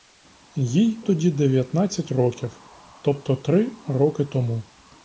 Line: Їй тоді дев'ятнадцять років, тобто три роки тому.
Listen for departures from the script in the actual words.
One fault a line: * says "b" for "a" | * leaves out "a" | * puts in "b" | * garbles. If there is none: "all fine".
all fine